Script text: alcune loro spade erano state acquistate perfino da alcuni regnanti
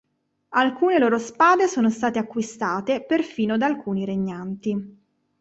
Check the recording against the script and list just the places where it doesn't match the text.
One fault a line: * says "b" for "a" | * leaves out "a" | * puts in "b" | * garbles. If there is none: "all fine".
* says "sono" for "erano"